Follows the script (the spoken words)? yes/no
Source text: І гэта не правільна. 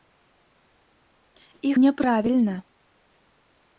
no